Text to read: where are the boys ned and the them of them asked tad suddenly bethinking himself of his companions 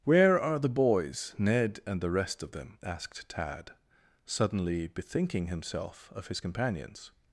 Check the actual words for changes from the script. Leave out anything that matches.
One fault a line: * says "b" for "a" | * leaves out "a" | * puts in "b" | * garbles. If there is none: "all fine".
* says "rest" for "them"